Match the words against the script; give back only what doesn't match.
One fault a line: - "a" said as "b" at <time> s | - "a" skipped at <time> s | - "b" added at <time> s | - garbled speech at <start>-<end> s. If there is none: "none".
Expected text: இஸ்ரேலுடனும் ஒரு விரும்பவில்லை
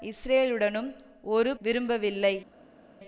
none